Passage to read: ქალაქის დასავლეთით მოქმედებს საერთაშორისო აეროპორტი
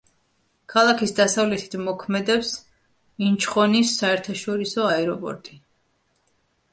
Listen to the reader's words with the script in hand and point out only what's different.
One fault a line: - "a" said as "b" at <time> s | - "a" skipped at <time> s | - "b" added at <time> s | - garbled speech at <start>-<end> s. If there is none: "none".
- "ინჩხონის" added at 3.3 s